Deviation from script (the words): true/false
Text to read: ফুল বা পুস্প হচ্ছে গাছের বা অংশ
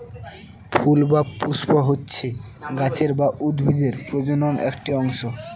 true